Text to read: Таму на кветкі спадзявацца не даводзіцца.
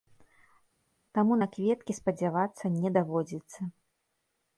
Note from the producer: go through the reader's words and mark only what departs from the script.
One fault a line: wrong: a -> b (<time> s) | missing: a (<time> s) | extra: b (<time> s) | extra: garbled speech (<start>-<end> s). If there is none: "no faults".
no faults